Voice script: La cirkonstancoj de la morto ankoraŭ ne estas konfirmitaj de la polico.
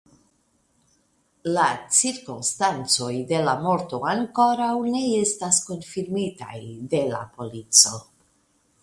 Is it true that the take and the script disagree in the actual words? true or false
false